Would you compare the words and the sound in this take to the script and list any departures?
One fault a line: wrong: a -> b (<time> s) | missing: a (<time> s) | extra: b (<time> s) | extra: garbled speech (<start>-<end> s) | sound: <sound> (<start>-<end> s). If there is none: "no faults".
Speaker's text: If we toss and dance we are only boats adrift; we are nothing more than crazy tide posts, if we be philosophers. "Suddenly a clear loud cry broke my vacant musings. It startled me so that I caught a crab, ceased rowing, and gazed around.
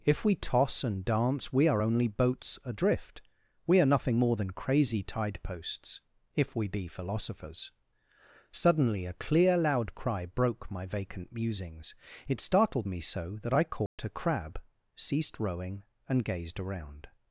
sound: dropout (13.9-14.0 s)